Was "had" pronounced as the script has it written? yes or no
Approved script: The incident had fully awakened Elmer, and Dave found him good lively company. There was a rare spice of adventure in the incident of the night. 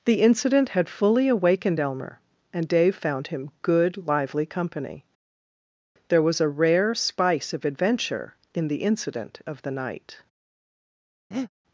yes